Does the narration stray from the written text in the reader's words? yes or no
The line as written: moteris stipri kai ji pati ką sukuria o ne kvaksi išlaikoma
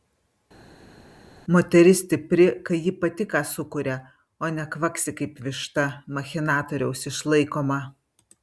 yes